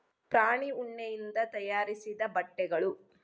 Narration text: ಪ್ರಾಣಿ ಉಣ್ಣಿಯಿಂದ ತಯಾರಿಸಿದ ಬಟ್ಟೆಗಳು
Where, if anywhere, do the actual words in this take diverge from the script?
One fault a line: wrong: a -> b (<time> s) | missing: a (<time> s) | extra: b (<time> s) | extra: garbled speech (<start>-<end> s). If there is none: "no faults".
no faults